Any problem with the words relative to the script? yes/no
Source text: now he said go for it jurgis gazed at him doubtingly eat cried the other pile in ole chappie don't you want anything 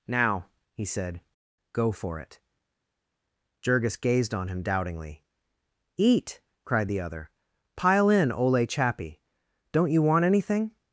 yes